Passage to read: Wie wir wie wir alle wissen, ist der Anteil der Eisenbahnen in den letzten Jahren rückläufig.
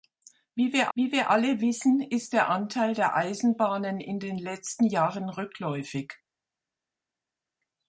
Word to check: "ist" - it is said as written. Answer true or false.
true